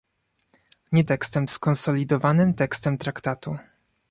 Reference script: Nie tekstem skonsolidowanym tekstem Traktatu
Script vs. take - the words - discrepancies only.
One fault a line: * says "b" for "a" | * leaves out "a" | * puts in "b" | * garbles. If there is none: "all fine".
all fine